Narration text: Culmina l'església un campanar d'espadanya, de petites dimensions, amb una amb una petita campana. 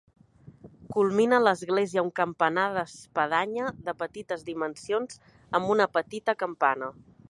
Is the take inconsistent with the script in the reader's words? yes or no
yes